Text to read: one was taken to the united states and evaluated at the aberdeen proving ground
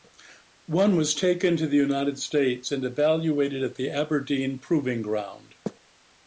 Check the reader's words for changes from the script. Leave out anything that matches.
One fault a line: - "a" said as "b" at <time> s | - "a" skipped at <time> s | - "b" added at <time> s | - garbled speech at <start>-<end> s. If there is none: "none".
none